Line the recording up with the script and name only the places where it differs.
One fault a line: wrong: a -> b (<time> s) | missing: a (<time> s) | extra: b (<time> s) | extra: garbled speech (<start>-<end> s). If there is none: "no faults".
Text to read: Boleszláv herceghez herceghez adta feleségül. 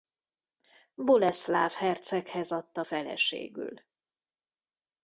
missing: herceghez (2.5 s)